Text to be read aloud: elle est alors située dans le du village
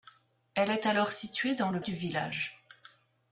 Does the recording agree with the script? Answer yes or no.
yes